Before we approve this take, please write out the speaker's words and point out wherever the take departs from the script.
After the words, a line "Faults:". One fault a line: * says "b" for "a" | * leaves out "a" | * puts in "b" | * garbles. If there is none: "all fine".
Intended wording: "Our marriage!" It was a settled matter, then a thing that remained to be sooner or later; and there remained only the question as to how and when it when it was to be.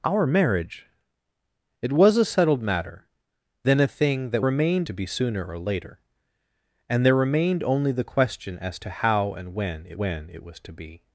"Our marriage!" It was a settled matter, then a thing that remained to be sooner or later; and there remained only the question as to how and when it when it was to be.
Faults:
all fine